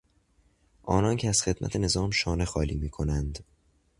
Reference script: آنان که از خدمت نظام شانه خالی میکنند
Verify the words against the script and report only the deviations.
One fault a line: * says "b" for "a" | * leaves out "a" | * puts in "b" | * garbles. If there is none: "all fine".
all fine